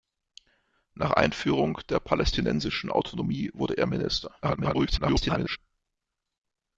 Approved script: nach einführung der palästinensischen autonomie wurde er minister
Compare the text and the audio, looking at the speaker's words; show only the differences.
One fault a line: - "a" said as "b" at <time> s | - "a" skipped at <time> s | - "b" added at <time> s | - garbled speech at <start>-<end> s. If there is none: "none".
- garbled speech at 4.4-5.6 s